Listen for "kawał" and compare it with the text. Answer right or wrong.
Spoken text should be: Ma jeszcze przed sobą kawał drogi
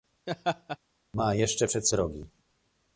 wrong